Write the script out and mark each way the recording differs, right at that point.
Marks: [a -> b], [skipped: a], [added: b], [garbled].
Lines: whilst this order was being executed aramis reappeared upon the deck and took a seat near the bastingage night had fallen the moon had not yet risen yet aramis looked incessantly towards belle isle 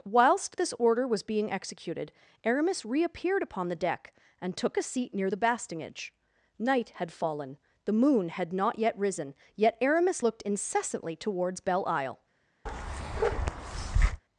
whilst this order was being executed aramis reappeared upon the deck and took a seat near the bastingage night had fallen the moon had not yet risen yet aramis looked incessantly towards belle isle